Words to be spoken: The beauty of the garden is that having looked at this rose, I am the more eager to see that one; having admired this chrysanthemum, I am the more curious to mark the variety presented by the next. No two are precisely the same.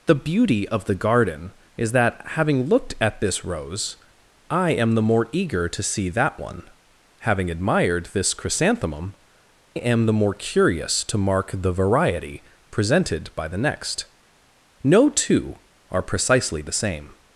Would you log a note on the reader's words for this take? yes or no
yes